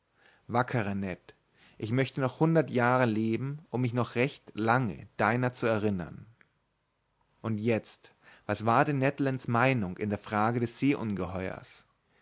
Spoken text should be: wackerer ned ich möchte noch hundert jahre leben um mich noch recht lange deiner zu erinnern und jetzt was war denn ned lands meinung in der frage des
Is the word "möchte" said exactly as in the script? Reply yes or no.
yes